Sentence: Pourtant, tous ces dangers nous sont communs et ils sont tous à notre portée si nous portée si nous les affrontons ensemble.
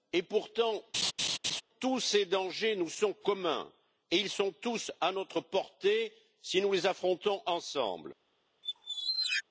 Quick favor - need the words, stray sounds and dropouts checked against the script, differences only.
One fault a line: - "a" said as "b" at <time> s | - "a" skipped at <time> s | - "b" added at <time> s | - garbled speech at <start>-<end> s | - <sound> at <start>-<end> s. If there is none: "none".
- laugh at 0.9-1.6 s
- "portée si nous" skipped at 6.7 s
- squeak at 8.6-9.4 s